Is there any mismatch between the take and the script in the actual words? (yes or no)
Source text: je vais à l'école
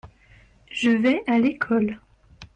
no